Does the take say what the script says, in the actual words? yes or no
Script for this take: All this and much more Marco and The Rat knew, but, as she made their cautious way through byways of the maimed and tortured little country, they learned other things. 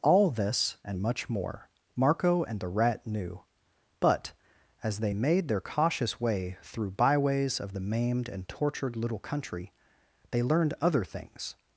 no